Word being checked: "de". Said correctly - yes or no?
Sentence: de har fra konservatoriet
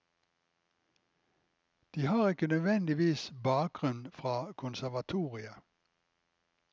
yes